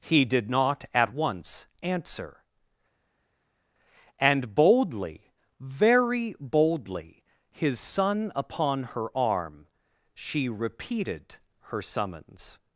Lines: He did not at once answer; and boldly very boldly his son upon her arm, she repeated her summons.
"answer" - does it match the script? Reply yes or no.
yes